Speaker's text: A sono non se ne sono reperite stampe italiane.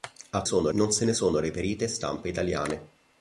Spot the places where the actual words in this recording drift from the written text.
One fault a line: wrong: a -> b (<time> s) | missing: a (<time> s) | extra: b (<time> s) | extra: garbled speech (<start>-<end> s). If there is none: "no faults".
no faults